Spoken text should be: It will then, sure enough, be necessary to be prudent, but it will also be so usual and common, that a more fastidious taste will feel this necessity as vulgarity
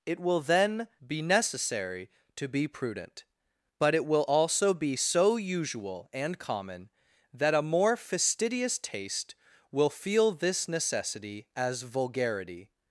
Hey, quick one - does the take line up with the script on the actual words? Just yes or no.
no